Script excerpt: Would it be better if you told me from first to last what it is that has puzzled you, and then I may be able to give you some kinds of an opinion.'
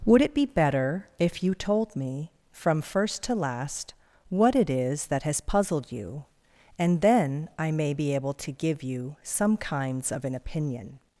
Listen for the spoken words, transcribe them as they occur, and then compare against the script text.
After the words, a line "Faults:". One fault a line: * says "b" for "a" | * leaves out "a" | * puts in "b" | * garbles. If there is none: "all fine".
Would it be better if you told me from first to last what it is that has puzzled you, and then I may be able to give you some kinds of an opinion.'
Faults:
all fine